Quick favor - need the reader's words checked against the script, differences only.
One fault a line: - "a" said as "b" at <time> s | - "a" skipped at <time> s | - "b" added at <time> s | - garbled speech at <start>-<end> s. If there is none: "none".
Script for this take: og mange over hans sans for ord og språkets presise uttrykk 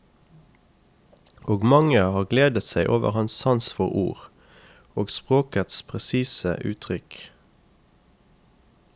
- "har gledet seg" added at 2.1 s